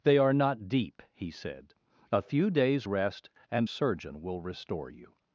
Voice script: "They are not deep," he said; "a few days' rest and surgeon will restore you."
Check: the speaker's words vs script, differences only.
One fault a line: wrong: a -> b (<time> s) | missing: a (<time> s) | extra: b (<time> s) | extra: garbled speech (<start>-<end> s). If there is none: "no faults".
no faults